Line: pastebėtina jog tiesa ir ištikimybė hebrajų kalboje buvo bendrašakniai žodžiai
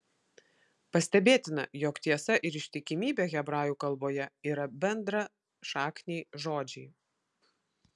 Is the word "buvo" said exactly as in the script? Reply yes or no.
no